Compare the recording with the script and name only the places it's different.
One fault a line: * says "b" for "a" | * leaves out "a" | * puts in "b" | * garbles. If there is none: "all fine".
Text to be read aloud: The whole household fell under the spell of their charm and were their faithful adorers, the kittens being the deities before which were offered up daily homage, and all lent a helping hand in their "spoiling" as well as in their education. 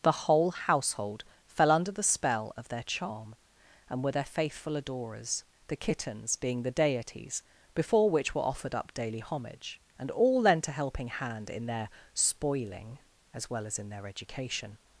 all fine